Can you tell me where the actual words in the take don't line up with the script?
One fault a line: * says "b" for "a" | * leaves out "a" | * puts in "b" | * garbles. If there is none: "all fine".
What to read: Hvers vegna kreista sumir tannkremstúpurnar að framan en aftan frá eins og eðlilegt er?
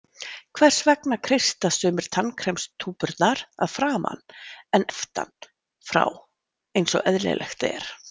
all fine